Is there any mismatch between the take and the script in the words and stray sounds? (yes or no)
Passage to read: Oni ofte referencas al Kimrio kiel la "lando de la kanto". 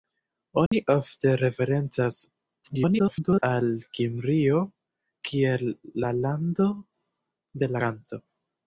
yes